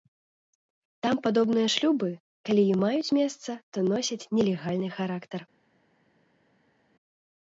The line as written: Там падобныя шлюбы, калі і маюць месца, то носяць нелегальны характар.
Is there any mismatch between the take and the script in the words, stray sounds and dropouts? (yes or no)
no